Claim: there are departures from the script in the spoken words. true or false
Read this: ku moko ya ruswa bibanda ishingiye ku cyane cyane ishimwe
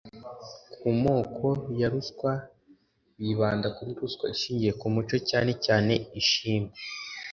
true